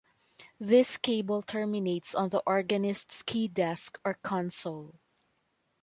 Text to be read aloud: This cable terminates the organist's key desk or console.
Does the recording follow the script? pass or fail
fail